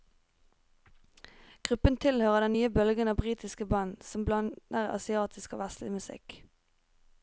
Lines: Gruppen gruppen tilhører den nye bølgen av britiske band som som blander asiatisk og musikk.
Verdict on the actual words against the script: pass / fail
fail